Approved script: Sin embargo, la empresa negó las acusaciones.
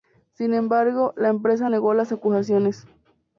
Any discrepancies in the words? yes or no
no